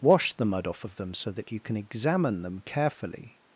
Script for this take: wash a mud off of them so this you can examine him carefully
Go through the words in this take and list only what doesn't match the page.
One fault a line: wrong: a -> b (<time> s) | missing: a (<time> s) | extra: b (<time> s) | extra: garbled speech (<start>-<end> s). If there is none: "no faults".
wrong: a -> the (0.3 s)
wrong: this -> that (1.3 s)
wrong: him -> them (2.4 s)